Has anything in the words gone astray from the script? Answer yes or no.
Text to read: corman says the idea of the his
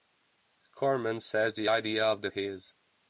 no